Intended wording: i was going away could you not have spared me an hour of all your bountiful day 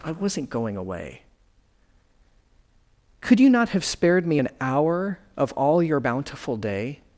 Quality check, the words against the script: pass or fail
fail